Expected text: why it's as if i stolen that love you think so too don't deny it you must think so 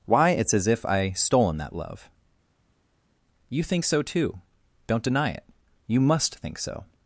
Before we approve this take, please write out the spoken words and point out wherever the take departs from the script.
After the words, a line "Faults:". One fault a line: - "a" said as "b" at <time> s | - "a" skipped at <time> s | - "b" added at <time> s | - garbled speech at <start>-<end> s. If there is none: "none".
why it's as if i stolen that love you think so too don't deny it you must think so
Faults:
none